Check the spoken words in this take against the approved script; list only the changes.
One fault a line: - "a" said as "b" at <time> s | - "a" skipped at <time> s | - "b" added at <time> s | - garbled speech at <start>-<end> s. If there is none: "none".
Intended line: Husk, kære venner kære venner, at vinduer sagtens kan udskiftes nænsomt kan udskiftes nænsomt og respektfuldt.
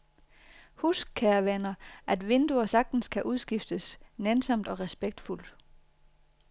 - "kære venner" skipped at 1.7 s
- "kan udskiftes nænsomt" skipped at 4.7 s